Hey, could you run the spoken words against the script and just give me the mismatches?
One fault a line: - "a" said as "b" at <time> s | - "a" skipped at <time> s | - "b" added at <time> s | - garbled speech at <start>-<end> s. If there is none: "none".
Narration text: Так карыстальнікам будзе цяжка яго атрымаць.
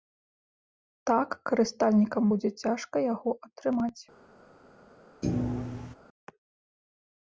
none